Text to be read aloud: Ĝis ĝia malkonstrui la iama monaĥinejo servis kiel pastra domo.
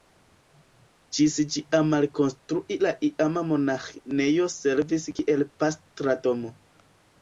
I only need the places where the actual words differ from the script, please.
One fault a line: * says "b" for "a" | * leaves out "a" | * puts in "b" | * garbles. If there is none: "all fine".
all fine